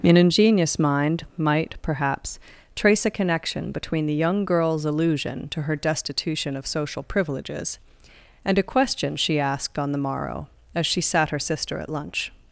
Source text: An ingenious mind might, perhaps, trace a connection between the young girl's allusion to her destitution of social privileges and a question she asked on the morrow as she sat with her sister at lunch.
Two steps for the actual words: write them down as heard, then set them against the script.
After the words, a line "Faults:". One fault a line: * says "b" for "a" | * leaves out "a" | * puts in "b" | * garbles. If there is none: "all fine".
An ingenious mind might, perhaps, trace a connection between the young girl's allusion to her destitution of social privileges and a question she asked on the morrow as she sat her sister at lunch.
Faults:
* leaves out "with"